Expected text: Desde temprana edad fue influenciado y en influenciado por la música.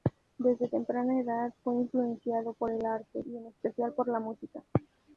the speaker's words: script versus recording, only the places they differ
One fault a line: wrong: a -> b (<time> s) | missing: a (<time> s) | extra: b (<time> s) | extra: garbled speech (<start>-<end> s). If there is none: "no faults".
extra: por el arte (2.5 s)
wrong: influenciado -> especial (3.5 s)